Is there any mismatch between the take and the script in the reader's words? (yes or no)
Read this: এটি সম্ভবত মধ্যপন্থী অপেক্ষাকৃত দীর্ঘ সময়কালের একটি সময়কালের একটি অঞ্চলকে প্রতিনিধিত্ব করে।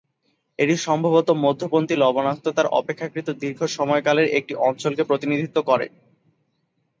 yes